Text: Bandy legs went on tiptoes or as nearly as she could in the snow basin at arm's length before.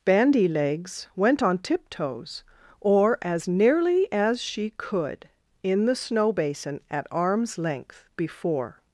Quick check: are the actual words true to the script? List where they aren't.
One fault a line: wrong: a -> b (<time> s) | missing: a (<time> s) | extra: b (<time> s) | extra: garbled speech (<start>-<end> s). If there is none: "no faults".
no faults